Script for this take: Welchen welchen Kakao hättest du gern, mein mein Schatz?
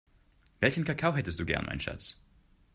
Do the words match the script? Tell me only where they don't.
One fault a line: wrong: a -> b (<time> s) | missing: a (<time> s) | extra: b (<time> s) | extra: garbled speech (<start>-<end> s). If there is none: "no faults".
missing: welchen (0.8 s)
missing: mein (1.8 s)